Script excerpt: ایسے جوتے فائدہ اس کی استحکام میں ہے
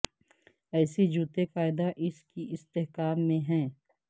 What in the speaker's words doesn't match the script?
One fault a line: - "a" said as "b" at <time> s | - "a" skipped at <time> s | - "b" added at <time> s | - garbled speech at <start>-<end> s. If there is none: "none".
none